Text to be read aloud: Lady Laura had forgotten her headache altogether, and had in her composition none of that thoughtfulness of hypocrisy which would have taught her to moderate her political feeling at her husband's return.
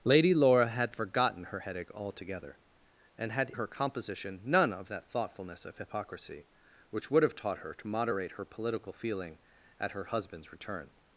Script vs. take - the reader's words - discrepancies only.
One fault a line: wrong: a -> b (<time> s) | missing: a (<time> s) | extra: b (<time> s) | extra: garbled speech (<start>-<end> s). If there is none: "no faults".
missing: in (3.5 s)